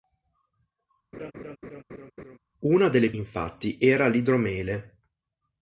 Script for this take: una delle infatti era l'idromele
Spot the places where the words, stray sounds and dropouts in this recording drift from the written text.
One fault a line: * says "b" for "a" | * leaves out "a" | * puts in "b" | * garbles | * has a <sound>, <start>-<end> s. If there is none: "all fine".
* has a laugh, 1.1-2.4 s